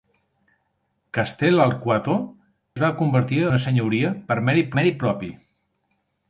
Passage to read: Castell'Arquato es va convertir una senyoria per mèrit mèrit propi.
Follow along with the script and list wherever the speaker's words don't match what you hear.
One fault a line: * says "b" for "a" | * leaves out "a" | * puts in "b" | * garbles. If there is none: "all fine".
all fine